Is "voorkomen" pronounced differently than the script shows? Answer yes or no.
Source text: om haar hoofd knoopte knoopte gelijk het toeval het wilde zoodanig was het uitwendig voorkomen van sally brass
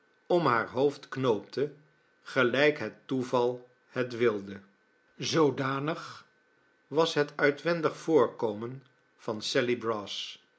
no